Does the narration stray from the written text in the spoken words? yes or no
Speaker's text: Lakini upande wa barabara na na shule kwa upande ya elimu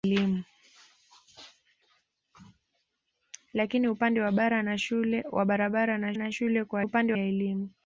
no